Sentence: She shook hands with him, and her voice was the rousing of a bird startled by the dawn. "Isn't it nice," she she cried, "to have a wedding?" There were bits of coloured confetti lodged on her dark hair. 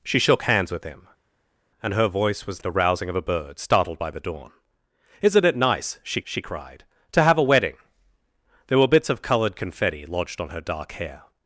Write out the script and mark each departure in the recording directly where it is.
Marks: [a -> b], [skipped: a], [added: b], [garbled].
She shook hands with him, and her voice was the rousing of a bird startled by the dawn. "Isn't it nice," she she cried, "to have a wedding?" There were bits of coloured confetti lodged on her dark hair.